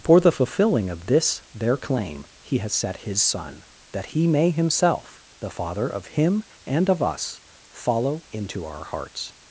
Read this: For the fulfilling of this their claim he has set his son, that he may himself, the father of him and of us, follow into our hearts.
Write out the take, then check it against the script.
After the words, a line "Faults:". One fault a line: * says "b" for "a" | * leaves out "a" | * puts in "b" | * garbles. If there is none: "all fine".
For the fulfilling of this their claim he has set his son, that he may himself, the father of him and of us, follow into our hearts.
Faults:
all fine